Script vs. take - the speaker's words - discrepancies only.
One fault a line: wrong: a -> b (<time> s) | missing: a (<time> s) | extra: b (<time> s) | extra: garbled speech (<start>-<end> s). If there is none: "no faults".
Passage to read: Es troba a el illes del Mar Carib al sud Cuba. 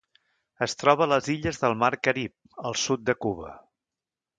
wrong: el -> les (1.1 s)
extra: de (3.1 s)